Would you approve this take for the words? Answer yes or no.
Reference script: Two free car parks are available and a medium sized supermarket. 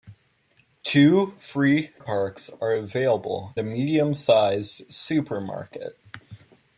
no